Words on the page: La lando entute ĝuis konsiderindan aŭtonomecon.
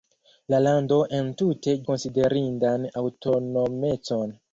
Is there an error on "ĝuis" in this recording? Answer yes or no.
yes